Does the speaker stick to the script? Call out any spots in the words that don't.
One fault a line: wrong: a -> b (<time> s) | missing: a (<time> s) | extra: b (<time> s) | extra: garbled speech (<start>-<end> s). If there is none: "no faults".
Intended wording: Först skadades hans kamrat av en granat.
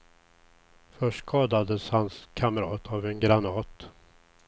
no faults